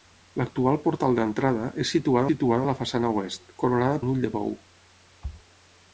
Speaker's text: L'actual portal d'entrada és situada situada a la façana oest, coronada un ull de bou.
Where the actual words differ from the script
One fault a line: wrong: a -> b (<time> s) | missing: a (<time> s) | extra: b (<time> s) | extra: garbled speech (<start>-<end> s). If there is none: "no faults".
no faults